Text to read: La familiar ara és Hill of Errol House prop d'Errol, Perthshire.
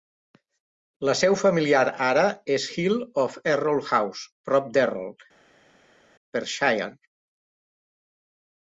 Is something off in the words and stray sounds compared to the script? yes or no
yes